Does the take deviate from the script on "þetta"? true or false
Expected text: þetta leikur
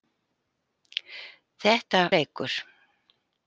false